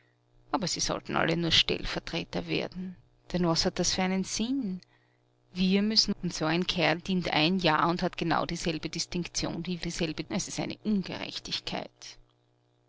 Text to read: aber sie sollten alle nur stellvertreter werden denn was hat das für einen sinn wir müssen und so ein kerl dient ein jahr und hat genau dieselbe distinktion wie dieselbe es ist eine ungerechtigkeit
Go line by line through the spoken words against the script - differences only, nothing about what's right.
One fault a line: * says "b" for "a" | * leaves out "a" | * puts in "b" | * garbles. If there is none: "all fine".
all fine